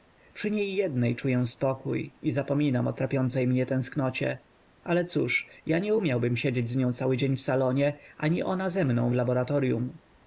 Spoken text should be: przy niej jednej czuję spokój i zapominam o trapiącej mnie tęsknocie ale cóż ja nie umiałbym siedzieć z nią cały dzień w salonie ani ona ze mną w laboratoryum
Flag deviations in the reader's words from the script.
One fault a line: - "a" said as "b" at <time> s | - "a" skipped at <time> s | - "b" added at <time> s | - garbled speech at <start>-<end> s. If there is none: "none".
none